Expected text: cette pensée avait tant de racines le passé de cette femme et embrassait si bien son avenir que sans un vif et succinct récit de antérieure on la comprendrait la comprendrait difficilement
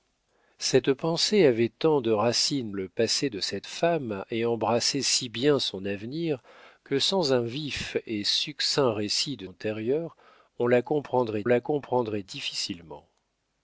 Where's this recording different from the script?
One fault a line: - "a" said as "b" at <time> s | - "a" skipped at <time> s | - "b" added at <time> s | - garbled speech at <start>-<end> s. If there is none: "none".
none